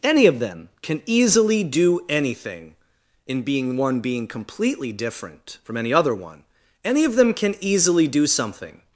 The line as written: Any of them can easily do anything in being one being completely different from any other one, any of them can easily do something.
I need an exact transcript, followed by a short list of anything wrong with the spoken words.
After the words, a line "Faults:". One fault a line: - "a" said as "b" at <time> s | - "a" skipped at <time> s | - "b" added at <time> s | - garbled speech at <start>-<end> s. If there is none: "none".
Any of them can easily do anything in being one being completely different from any other one, any of them can easily do something.
Faults:
none